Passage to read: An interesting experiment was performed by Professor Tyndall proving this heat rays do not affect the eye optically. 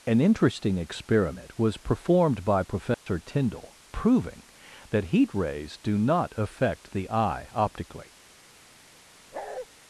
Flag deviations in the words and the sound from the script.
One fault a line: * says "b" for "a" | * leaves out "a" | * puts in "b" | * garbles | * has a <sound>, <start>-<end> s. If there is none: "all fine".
* has a dropout, 2.9-3.1 s
* says "that" for "this"
* has a bark, 9.3-9.7 s